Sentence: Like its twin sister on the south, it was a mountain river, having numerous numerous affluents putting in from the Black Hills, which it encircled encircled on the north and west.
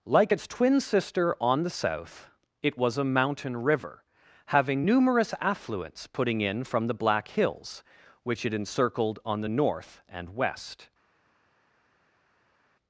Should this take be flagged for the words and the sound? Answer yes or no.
yes